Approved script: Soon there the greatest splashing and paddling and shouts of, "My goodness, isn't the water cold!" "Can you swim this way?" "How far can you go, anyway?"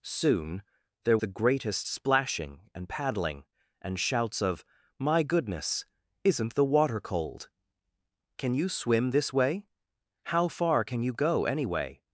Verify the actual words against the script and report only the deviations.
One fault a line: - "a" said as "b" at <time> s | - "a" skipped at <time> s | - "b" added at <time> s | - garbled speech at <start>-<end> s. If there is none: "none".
none